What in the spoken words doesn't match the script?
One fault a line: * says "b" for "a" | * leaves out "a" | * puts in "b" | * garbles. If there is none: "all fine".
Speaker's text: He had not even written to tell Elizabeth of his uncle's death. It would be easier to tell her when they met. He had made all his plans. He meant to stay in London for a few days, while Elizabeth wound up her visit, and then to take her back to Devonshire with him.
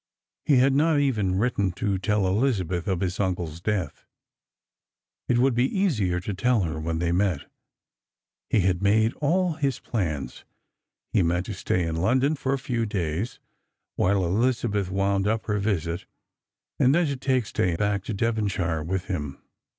* says "stay" for "her"